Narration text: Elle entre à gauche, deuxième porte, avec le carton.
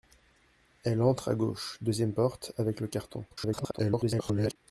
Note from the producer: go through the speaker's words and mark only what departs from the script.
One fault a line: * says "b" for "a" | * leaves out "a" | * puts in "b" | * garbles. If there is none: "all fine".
* garbles